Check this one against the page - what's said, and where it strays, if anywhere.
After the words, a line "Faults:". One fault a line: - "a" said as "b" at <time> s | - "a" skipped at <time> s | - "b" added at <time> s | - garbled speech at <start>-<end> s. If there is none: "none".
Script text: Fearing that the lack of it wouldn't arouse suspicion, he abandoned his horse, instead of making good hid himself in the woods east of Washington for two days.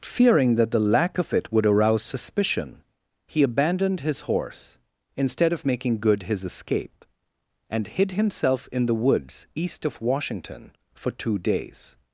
Fearing that the lack of it would arouse suspicion, he abandoned his horse, instead of making good his escape, and hid himself in the woods east of Washington for two days.
Faults:
- "wouldn't" said as "would" at 1.5 s
- "his escape and" added at 6.2 s